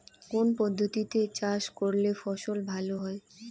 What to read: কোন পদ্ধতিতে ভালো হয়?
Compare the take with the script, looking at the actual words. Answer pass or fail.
fail